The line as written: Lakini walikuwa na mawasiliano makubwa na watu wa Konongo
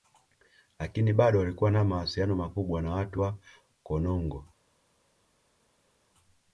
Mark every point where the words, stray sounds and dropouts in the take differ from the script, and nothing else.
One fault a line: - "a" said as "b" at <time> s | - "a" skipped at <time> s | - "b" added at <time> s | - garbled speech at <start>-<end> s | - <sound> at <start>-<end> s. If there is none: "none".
- "bado" added at 1.1 s